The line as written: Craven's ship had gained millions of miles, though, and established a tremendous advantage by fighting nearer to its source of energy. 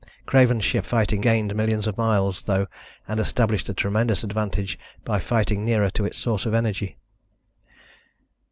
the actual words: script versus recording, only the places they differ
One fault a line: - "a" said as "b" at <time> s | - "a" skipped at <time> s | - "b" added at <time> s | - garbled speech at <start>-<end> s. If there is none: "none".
- "had" said as "fighting" at 0.8 s